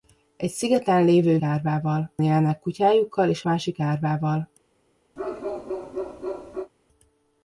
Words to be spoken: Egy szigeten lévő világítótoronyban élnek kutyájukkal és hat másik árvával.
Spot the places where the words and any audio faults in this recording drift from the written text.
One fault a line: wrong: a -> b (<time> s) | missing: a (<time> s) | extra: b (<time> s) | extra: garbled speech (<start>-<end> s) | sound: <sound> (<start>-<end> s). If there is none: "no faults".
wrong: világítótoronyban -> árvával (1.4 s)
missing: hat (3.4 s)
sound: bark (5.2-6.7 s)